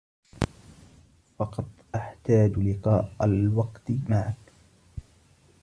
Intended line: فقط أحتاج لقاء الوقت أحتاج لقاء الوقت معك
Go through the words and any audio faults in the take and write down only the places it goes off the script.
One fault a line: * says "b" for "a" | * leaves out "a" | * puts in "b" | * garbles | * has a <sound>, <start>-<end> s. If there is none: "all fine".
* leaves out "أحتاج لقاء الوقت"